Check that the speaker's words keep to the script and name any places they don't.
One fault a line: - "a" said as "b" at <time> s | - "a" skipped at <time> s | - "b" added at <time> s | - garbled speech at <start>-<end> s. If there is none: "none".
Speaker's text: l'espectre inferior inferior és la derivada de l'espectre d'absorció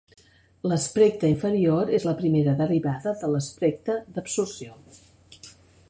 - "inferior" skipped at 1.9 s
- "primera" added at 2.2 s